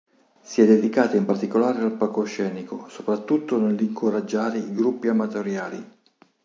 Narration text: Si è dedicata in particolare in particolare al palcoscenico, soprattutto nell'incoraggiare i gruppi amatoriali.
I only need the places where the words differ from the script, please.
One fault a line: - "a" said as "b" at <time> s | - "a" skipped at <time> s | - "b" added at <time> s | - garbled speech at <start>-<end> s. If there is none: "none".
- "in particolare" skipped at 1.8 s